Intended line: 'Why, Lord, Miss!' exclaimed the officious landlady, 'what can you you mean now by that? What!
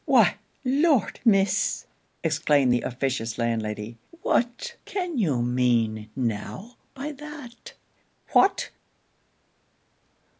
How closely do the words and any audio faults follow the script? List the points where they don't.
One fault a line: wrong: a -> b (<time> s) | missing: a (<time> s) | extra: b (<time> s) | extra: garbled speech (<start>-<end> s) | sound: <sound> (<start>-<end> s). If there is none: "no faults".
missing: you (5.4 s)